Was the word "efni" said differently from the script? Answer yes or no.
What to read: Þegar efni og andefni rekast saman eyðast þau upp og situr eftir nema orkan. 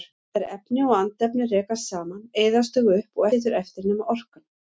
no